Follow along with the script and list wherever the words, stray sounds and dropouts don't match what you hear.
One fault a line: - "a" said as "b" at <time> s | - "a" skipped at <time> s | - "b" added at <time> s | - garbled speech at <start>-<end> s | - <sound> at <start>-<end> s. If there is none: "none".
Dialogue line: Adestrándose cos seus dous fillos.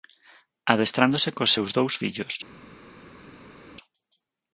none